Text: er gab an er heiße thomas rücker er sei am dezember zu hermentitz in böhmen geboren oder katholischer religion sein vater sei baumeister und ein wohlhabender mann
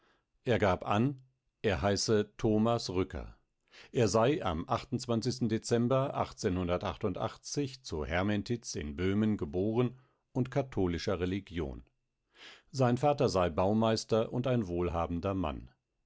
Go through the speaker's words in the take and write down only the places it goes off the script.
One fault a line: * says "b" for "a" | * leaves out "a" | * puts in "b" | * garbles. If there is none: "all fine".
* says "und" for "oder"